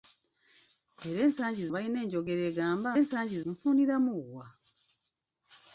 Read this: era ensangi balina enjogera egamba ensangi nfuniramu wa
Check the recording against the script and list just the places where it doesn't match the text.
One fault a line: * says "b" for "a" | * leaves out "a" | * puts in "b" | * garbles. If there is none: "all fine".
all fine